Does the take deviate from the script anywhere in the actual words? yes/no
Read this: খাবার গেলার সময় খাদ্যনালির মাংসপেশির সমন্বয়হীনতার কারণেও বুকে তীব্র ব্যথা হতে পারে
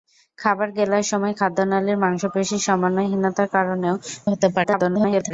yes